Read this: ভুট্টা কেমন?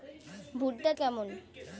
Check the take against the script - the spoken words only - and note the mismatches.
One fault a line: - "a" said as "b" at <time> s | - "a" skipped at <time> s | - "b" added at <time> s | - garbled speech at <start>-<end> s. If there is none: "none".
none